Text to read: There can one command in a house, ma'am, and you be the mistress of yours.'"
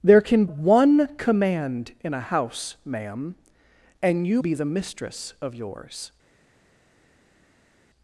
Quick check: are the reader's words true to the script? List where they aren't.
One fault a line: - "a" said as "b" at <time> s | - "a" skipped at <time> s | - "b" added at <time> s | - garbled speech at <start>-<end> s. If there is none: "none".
none